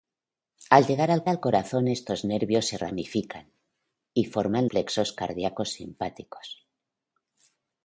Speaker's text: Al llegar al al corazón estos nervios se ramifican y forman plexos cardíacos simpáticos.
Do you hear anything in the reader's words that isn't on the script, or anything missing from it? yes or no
no